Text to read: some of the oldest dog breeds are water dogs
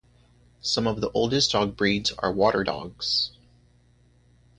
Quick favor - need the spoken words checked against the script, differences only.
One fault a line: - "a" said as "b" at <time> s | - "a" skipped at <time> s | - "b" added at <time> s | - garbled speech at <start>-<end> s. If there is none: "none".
none